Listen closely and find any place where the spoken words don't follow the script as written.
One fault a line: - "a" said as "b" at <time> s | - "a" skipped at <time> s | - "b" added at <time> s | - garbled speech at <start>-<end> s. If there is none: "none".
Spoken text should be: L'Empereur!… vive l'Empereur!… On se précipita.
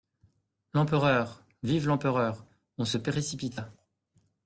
none